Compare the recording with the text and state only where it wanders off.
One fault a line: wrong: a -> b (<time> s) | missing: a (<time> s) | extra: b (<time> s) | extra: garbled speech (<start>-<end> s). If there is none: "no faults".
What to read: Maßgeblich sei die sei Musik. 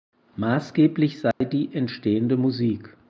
wrong: sei -> entstehende (1.7 s)